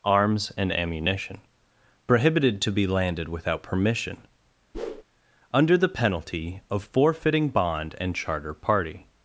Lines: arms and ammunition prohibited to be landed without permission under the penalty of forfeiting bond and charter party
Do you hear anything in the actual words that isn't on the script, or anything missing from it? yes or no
no